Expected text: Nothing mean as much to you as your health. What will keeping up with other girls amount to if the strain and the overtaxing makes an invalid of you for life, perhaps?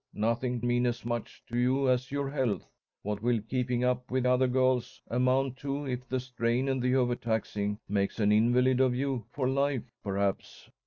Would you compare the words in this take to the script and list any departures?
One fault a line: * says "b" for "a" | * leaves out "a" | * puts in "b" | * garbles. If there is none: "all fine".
all fine